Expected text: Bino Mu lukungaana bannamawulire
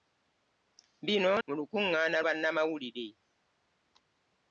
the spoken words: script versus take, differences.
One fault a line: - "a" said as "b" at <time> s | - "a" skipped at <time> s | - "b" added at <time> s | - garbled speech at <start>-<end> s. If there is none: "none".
none